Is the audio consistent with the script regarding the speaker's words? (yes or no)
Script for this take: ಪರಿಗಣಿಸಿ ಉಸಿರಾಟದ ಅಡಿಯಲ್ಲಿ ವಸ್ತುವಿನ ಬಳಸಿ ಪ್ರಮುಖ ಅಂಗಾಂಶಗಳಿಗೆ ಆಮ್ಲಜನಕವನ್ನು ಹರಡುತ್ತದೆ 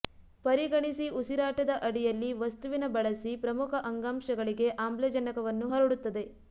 yes